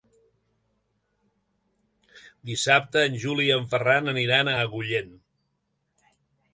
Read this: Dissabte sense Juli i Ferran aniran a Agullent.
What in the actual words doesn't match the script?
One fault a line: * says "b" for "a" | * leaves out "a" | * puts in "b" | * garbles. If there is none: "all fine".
* says "en" for "sense"
* puts in "en"